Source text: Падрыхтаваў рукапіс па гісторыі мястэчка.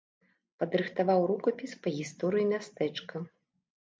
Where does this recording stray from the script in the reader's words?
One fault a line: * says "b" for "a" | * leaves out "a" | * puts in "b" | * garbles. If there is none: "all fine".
all fine